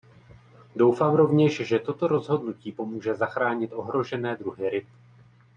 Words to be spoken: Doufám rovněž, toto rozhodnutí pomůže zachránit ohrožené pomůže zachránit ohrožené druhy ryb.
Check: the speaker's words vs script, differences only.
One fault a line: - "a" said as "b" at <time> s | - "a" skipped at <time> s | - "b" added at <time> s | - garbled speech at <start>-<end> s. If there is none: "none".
- "že" added at 1.7 s
- "pomůže zachránit ohrožené" skipped at 4.4 s